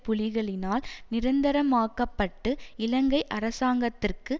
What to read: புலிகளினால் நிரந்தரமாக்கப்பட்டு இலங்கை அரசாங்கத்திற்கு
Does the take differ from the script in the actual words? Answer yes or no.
no